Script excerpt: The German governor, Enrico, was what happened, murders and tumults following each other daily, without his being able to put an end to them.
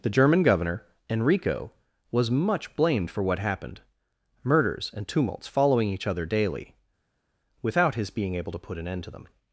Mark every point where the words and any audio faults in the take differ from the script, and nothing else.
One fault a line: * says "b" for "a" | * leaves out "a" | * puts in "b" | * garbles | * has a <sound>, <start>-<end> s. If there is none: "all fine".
* puts in "much blamed for"